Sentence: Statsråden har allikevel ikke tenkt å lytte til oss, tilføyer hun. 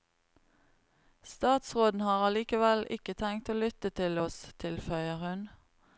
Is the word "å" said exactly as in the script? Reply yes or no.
yes